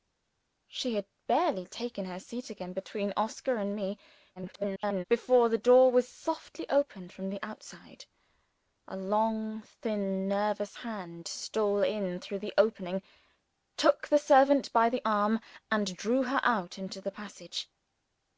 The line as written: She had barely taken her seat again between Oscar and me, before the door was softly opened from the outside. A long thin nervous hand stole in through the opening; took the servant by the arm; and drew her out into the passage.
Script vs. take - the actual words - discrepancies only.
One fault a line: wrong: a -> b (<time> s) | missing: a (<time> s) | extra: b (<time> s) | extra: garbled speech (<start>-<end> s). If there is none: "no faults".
extra: garbled speech (4.4-5.0 s)